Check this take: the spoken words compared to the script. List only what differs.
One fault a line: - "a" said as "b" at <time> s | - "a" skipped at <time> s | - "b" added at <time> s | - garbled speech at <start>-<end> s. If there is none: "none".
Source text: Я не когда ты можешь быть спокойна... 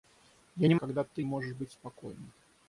none